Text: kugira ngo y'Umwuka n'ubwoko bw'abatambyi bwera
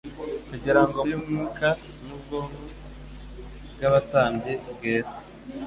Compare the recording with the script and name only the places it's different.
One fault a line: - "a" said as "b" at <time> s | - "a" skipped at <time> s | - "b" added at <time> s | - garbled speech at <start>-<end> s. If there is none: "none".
none